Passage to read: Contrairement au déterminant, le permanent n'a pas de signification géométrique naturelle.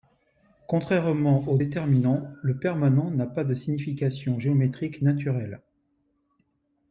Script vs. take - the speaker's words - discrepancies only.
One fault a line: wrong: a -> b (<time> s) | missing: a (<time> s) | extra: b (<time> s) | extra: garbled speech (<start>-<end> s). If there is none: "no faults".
no faults